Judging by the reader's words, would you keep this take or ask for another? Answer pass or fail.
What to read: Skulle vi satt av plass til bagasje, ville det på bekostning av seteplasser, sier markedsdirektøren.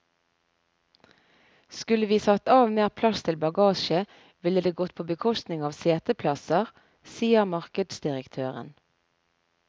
fail